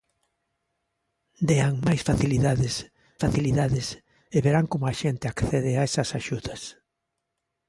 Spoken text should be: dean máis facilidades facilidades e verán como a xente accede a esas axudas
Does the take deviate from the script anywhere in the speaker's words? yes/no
no